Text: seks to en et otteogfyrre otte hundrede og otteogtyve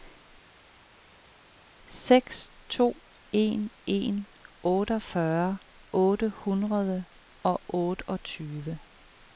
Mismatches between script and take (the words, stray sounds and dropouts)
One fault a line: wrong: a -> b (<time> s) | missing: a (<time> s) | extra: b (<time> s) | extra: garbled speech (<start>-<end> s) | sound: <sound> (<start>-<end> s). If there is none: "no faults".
wrong: et -> en (3.9 s)